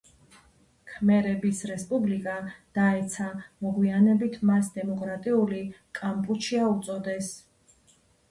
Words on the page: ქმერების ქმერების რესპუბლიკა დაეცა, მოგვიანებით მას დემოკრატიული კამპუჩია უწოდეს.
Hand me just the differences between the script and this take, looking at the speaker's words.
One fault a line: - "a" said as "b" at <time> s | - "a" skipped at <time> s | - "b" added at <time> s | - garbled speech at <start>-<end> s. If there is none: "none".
- "ქმერების" skipped at 1.6 s